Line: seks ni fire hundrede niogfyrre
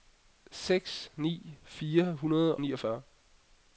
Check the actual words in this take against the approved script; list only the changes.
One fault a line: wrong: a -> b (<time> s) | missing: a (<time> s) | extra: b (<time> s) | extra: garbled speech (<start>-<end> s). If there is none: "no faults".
no faults